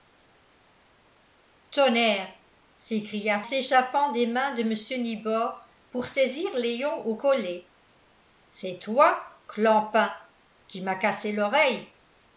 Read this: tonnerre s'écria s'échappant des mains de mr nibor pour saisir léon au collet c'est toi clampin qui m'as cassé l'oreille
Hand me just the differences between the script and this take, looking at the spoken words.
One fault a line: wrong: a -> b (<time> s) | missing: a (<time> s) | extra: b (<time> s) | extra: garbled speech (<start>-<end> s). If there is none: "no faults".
no faults